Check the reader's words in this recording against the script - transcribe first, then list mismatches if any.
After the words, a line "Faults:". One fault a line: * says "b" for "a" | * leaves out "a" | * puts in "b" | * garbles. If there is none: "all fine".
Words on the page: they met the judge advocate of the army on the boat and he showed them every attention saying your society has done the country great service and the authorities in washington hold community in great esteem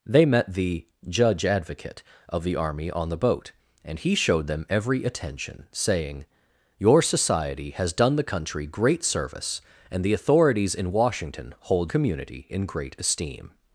they met the judge advocate of the army on the boat and he showed them every attention saying your society has done the country great service and the authorities in washington hold community in great esteem
Faults:
all fine